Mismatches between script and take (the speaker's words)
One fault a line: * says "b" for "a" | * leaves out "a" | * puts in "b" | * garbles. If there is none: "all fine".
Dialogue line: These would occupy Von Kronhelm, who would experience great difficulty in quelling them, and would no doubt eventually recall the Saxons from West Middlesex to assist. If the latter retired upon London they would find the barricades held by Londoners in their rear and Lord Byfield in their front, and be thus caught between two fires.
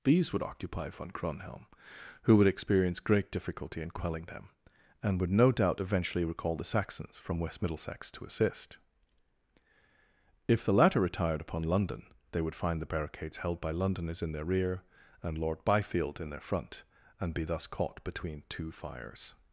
all fine